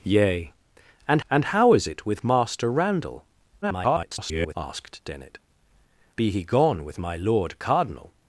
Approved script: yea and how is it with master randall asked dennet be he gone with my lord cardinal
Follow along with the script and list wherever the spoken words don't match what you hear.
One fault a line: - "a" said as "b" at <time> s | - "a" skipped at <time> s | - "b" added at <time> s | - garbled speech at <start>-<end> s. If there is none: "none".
- "and" added at 1.3 s
- garbled speech at 3.6-4.6 s